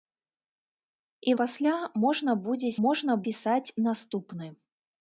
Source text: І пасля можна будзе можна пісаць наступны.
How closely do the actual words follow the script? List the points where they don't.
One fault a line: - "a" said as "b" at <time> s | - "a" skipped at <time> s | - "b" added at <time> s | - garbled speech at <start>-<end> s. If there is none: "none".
none